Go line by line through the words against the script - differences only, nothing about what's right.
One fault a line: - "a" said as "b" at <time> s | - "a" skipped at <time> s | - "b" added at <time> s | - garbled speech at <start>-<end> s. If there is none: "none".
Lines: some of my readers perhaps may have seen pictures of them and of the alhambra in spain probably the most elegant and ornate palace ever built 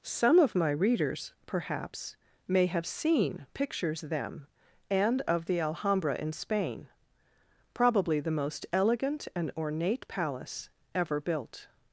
- "of" skipped at 4.0 s